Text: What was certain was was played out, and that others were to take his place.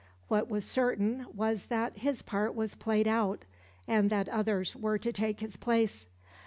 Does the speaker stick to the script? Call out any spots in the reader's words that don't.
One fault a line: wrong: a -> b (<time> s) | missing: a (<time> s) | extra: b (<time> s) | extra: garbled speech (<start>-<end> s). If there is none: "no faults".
extra: that his part (1.7 s)